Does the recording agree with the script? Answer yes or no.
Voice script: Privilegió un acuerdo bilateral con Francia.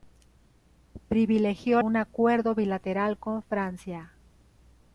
yes